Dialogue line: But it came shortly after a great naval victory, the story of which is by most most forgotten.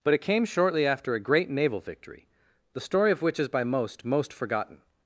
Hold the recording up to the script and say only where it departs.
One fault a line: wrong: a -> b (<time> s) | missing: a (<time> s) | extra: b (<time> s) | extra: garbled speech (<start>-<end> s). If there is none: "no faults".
no faults